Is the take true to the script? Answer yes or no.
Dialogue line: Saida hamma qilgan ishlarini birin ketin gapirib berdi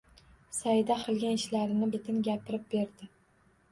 no